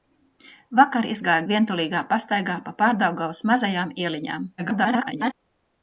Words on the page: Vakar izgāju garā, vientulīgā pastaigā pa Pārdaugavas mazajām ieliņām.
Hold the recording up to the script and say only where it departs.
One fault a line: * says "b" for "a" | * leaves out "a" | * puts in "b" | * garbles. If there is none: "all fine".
* leaves out "garā"
* garbles